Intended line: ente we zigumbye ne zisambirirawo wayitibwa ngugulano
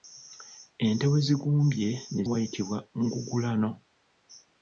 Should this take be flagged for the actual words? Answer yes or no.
yes